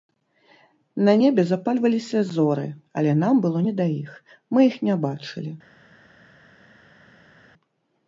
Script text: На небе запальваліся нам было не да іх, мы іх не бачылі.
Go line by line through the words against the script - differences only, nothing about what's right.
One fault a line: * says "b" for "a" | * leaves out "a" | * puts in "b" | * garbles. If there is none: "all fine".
* puts in "зоры але"